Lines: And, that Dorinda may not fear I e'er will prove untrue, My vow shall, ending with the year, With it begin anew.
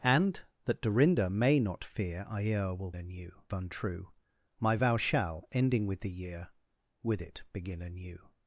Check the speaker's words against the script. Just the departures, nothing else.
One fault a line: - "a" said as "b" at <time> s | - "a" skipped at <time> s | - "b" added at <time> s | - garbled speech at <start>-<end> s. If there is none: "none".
- "prove" said as "anew" at 2.9 s